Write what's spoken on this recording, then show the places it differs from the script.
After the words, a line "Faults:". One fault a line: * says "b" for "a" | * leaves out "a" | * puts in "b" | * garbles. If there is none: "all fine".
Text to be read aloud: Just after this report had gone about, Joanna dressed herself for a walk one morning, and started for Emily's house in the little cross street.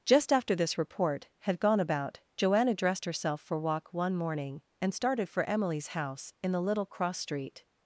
Just after this report had gone about, Joanna dressed herself for walk one morning, and started for Emily's house in the little cross street.
Faults:
* leaves out "a"